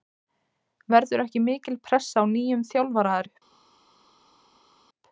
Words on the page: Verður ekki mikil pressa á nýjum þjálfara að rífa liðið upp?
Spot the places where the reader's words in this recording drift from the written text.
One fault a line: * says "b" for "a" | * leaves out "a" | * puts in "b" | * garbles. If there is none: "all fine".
* leaves out "rífa liðið"